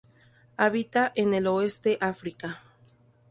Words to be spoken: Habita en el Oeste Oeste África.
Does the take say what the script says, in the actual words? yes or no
no